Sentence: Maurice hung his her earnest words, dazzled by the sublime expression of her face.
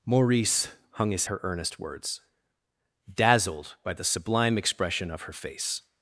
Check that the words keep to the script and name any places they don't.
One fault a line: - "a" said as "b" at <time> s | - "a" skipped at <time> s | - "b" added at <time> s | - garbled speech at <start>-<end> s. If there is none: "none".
none